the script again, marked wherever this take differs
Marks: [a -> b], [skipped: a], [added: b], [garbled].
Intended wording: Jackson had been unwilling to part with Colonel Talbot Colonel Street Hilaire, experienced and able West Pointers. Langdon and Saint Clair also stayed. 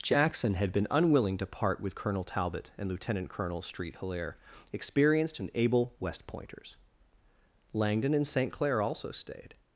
Jackson had been unwilling to part with Colonel Talbot [added: and Lieutenant] Colonel Street Hilaire, experienced and able West Pointers. Langdon and Saint Clair also stayed.